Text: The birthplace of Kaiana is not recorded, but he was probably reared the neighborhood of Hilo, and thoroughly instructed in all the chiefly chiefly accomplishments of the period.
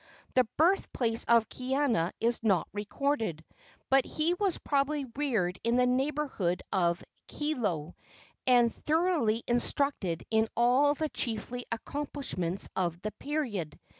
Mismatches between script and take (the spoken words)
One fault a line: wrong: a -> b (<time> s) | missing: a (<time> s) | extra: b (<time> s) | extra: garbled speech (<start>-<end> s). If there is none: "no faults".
extra: in (5.6 s)
missing: chiefly (11.7 s)